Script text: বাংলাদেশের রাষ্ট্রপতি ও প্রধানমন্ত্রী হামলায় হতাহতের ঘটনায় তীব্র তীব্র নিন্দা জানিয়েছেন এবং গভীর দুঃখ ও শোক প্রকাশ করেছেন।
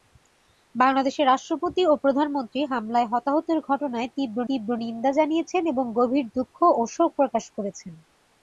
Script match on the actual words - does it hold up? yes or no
yes